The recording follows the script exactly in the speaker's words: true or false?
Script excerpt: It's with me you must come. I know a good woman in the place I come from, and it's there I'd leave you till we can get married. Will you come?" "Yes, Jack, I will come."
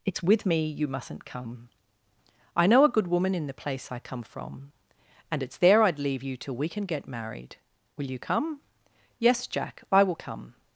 false